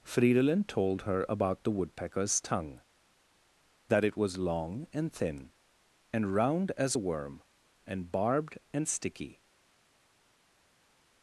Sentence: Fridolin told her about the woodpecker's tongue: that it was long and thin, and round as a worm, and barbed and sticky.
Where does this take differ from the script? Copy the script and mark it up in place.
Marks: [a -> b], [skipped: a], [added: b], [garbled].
Fridolin told her about the woodpecker's tongue: that it was long and thin, and round as a worm, and barbed and sticky.